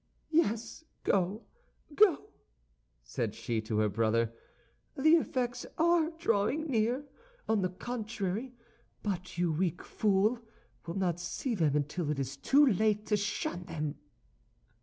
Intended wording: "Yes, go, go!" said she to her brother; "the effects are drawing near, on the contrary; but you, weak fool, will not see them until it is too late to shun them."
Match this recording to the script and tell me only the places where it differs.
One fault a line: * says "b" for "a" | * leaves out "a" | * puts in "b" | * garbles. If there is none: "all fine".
all fine